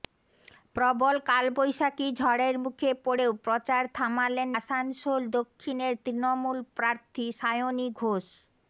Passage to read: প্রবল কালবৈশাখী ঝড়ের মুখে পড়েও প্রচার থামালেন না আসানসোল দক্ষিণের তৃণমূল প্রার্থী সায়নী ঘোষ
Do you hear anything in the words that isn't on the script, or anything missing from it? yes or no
yes